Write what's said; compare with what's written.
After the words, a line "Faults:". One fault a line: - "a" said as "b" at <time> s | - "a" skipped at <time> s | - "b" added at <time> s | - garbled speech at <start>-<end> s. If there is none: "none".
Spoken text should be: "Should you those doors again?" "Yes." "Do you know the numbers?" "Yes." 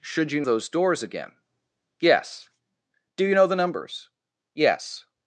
"Should you those doors again?" "Yes." "Do you know the numbers?" "Yes."
Faults:
none